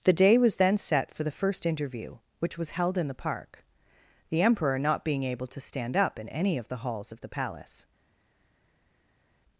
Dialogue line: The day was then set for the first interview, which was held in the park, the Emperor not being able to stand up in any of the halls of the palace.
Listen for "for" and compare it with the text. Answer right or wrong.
right